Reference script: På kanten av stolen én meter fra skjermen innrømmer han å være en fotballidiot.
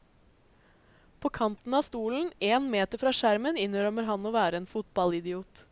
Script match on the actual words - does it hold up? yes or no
yes